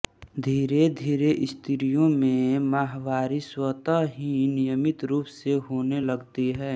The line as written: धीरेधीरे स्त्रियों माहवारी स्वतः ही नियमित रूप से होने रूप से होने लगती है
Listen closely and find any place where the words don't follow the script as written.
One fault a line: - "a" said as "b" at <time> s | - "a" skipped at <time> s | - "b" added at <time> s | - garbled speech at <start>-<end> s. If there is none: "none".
- "में" added at 2.1 s
- "रूप से होने" skipped at 6.0 s